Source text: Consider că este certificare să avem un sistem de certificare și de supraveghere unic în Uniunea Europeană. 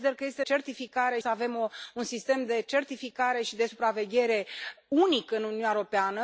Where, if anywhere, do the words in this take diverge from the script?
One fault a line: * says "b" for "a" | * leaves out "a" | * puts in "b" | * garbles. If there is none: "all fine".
all fine